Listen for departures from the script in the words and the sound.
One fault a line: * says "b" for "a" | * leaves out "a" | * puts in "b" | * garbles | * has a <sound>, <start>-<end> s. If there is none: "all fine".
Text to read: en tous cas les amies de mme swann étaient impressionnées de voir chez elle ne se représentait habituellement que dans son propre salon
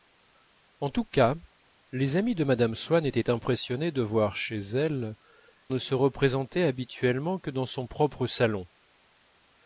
all fine